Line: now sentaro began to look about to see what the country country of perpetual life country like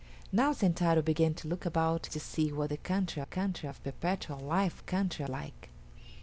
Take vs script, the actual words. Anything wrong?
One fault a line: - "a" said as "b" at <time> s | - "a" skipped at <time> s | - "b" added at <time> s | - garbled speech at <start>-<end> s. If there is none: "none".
none